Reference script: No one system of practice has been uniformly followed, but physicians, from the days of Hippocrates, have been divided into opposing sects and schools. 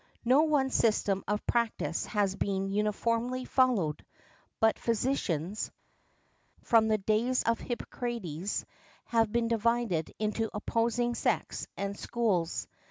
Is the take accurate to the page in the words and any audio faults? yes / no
yes